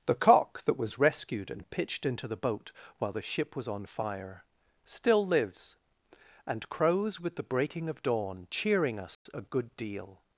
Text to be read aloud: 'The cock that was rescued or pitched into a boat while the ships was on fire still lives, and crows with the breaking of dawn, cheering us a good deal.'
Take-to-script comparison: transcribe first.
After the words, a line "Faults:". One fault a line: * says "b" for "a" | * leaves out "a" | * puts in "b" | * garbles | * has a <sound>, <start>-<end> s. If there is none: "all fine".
'The cock that was rescued and pitched into the boat while the ship was on fire still lives, and crows with the breaking of dawn, cheering us a good deal.'
Faults:
* says "and" for "or"
* says "the" for "a"
* says "ship" for "ships"
* has a dropout, 9.1-9.3 s